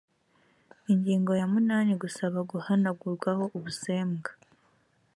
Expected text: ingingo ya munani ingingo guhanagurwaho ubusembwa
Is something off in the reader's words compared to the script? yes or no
yes